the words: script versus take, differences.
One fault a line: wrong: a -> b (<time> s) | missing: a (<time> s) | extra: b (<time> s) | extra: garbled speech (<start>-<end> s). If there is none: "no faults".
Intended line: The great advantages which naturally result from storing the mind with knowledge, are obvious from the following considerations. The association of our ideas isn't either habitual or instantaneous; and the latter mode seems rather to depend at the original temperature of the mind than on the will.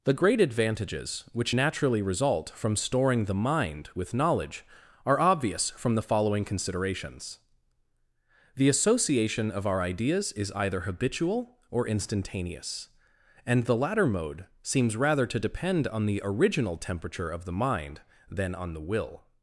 wrong: isn't -> is (10.3 s)
wrong: at -> on (15.9 s)